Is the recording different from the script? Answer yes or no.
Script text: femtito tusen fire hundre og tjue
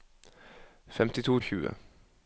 yes